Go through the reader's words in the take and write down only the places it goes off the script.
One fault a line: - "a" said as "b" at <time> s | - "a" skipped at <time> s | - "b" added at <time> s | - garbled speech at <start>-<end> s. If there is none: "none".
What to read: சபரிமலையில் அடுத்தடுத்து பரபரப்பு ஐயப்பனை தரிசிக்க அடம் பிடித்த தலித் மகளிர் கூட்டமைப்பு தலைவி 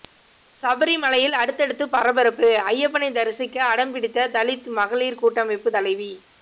none